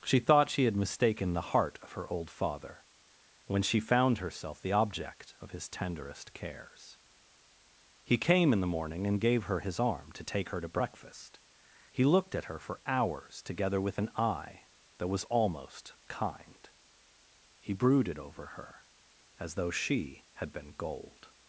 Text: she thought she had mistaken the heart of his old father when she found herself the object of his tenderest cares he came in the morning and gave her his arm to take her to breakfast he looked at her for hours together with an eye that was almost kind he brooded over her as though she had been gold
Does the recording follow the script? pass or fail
fail